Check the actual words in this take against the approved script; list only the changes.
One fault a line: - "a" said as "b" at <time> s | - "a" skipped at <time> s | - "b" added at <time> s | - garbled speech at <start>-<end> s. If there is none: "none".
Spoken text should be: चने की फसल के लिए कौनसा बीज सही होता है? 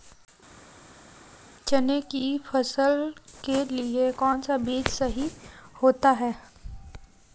none